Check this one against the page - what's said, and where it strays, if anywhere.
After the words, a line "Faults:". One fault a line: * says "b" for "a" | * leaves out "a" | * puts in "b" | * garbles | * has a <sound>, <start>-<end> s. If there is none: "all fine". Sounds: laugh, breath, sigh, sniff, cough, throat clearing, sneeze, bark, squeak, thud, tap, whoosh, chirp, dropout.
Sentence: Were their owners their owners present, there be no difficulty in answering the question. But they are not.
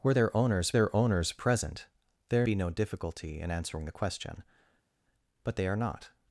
Were their owners their owners present, there be no difficulty in answering the question. But they are not.
Faults:
all fine